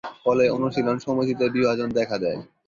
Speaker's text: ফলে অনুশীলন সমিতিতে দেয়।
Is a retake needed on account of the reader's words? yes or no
yes